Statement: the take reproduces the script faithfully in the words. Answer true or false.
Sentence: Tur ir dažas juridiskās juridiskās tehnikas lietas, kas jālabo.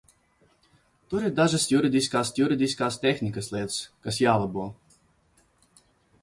true